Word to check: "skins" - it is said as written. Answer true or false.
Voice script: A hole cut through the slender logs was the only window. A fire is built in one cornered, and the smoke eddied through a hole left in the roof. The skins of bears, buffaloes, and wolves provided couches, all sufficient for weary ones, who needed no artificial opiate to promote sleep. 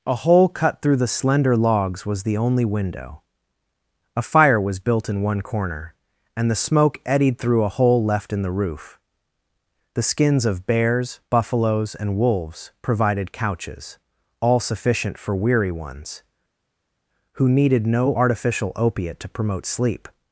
true